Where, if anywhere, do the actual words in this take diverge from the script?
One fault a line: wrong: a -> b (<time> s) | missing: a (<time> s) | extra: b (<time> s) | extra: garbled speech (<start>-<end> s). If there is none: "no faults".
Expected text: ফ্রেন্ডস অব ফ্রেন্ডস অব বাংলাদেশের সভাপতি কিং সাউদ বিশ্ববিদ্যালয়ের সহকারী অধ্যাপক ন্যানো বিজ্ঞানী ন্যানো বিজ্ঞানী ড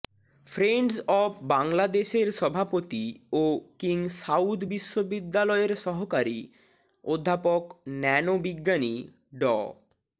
missing: ফ্রেন্ডস অব (1.3 s)
extra: ও (3.3 s)
missing: ন্যানো বিজ্ঞানী (8.9 s)